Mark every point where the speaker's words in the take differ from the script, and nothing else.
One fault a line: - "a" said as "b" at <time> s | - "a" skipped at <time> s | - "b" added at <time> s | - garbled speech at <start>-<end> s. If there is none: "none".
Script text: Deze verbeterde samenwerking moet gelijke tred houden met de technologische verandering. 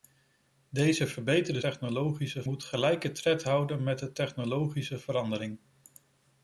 - "samenwerking" said as "technologische" at 1.6 s